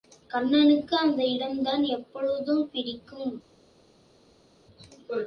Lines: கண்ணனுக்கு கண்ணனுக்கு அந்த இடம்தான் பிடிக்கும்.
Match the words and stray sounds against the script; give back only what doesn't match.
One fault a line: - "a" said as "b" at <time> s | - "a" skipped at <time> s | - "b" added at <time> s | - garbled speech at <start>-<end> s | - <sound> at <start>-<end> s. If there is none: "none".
- "கண்ணனுக்கு" skipped at 1.0 s
- "எப்பொழுதும்" added at 1.8 s